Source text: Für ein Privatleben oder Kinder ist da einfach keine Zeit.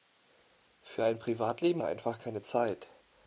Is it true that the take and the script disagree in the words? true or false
true